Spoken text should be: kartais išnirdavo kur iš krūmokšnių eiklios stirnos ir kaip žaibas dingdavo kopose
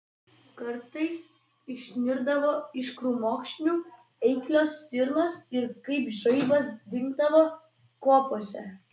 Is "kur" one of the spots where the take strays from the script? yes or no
yes